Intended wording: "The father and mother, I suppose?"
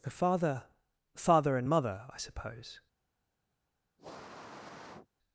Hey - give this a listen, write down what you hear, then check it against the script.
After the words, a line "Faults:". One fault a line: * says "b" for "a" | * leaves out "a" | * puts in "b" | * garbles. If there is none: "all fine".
"The father father and mother, I suppose?"
Faults:
* puts in "father"